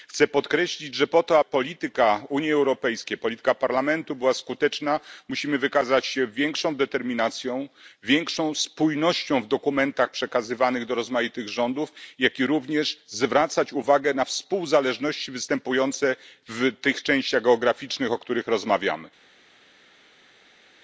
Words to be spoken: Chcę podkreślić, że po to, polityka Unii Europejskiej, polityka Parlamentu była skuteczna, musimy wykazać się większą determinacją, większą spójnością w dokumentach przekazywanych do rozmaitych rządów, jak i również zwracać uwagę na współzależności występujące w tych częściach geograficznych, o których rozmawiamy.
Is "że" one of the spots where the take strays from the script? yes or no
no